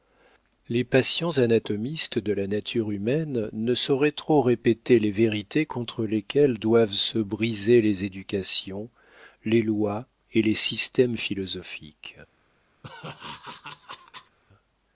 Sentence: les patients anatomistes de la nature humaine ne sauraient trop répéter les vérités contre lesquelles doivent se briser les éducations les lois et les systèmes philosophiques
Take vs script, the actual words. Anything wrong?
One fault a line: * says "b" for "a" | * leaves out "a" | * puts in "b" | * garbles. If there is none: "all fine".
all fine